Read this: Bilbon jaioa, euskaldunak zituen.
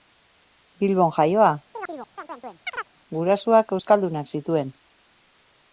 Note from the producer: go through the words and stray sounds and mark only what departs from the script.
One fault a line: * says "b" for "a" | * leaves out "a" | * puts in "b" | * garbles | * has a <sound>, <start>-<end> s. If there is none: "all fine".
* has a chirp, 1.7-2.9 s
* puts in "gurasoak"